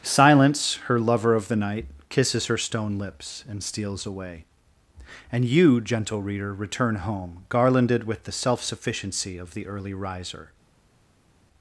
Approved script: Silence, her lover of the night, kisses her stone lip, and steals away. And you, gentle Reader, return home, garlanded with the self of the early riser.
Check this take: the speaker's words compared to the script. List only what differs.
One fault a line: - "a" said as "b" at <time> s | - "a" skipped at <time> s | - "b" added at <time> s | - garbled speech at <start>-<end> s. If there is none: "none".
- "lip" said as "lips" at 3.0 s
- "sufficiency" added at 8.6 s